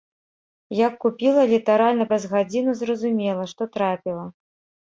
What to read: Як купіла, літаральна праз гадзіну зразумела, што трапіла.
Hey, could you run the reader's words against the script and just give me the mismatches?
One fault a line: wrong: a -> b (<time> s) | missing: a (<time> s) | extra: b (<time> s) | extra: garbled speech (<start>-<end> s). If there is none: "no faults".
no faults